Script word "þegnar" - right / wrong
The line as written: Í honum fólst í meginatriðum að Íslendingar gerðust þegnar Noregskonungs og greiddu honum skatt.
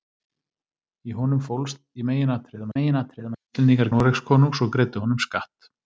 wrong